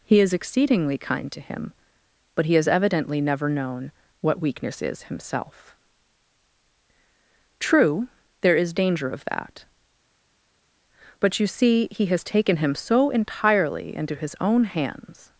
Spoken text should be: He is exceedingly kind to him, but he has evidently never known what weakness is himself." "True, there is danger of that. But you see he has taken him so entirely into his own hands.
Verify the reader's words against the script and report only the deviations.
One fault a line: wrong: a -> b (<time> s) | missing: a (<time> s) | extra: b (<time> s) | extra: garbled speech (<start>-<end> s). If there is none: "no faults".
no faults